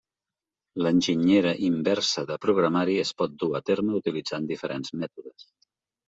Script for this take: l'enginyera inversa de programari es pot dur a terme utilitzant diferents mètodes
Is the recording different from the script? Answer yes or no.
no